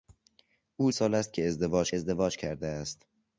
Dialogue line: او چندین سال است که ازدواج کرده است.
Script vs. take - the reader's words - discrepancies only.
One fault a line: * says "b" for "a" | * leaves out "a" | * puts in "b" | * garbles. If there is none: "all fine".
* leaves out "چندین"
* puts in "ازدواج"